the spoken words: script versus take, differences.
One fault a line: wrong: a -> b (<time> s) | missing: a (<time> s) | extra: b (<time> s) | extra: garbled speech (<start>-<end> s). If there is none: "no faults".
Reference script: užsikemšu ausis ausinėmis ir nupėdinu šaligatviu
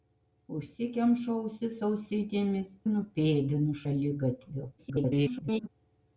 missing: ir (2.7 s)
extra: garbled speech (4.8-5.7 s)